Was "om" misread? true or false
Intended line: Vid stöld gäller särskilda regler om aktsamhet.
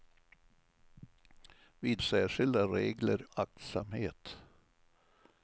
true